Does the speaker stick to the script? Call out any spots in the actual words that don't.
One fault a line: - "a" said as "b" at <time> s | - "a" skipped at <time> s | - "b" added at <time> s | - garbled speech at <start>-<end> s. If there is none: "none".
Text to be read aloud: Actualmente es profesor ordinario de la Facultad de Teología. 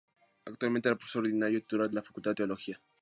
- "titular" added at 1.6 s